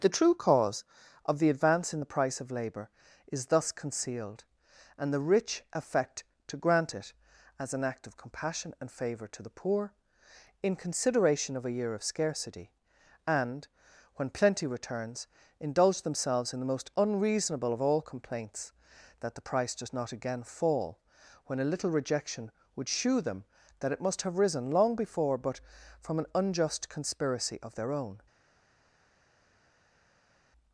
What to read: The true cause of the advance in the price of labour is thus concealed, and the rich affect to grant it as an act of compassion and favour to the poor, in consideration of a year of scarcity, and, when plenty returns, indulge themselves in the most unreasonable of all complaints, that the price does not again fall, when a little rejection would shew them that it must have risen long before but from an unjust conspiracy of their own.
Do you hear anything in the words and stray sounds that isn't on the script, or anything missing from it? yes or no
no